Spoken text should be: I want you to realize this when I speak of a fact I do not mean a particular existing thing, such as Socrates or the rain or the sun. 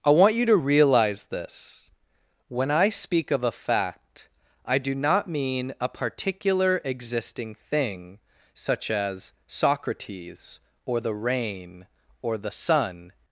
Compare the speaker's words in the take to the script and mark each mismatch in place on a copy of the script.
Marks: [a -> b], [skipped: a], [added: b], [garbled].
I want you to realize this when I speak of a fact I do not mean a particular existing thing, such as Socrates or the rain or the sun.